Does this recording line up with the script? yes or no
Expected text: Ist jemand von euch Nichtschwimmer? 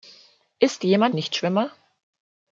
no